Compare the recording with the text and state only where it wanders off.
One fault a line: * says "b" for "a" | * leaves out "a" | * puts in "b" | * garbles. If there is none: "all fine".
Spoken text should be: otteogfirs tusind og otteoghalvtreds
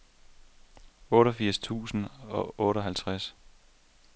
all fine